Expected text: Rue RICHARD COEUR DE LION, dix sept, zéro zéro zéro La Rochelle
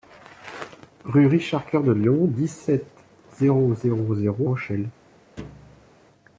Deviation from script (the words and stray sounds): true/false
true